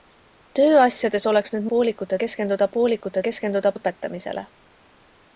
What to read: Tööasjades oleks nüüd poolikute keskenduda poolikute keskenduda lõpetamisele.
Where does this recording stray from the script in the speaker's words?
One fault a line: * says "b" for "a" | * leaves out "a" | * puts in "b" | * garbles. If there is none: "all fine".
all fine